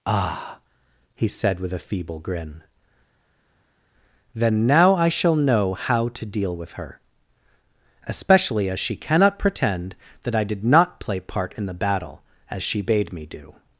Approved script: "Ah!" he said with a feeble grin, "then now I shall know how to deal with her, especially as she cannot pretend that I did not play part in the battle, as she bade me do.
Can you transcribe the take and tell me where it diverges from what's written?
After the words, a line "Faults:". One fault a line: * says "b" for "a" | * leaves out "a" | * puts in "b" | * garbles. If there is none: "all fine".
"Ah!" he said with a feeble grin, "then now I shall know how to deal with her, especially as she cannot pretend that I did not play part in the battle, as she bade me do.
Faults:
all fine